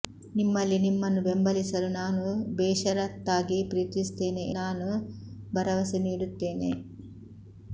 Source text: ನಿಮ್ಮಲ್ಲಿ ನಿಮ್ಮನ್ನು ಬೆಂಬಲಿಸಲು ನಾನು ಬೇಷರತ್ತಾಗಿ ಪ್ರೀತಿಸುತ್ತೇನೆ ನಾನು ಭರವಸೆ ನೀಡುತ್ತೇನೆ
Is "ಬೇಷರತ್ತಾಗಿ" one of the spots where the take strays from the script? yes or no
no